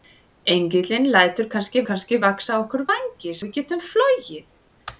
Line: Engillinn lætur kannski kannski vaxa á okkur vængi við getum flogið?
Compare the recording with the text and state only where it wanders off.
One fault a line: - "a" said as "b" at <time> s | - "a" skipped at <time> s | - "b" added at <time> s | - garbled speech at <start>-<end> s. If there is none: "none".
none